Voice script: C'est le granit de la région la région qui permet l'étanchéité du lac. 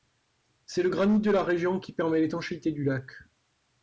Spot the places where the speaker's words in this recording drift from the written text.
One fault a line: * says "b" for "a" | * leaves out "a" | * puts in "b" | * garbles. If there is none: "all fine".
* leaves out "la région"